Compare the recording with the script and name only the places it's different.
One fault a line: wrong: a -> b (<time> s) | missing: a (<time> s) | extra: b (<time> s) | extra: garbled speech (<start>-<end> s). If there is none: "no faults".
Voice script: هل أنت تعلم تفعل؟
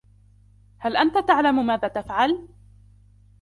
extra: ماذا (1.6 s)